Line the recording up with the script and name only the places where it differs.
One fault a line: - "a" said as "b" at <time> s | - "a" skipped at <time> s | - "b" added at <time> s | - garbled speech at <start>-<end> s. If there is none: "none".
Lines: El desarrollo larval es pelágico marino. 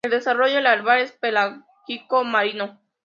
none